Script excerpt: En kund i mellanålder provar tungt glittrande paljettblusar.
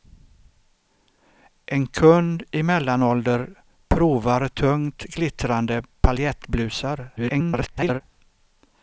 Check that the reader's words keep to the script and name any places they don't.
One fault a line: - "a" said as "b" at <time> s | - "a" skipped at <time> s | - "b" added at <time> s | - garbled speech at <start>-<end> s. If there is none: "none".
- garbled speech at 7.2-8.0 s